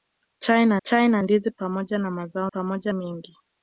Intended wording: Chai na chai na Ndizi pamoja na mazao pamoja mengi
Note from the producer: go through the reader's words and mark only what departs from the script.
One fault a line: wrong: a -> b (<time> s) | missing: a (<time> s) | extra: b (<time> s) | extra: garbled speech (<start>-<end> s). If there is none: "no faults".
no faults